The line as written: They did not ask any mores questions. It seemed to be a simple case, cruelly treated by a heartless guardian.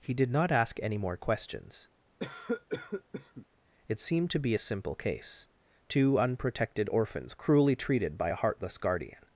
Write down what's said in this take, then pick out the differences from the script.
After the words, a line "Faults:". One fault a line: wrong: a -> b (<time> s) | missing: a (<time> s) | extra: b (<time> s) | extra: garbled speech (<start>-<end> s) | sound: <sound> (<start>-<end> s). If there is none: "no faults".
He did not ask any more questions. It seemed to be a simple case, two unprotected orphans cruelly treated by a heartless guardian.
Faults:
wrong: They -> He (0.0 s)
wrong: mores -> more (1.0 s)
sound: cough (2.2-3.5 s)
extra: two unprotected orphans (5.9 s)